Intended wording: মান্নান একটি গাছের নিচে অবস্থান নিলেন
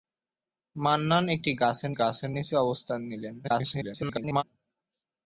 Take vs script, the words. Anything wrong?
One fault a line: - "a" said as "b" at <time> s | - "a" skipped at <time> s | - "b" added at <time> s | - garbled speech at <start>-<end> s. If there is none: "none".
- "গাছের" added at 1.9 s
- garbled speech at 3.4-4.4 s